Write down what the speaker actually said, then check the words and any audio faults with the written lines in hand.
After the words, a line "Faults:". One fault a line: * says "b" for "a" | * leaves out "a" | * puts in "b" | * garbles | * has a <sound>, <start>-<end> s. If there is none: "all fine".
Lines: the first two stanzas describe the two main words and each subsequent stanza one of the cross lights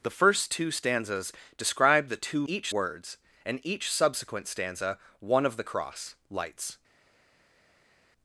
the first two stanzas describe the two each words and each subsequent stanza one of the cross lights
Faults:
* says "each" for "main"